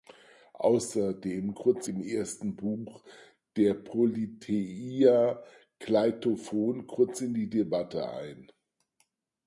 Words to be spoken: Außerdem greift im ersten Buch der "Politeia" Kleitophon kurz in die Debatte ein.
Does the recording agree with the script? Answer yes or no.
no